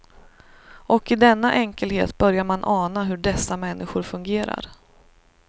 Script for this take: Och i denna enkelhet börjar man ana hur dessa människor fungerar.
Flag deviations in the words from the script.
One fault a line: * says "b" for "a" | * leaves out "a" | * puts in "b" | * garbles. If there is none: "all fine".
all fine